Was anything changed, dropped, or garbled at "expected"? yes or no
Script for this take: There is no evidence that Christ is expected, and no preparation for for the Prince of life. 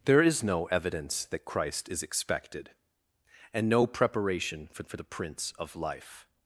no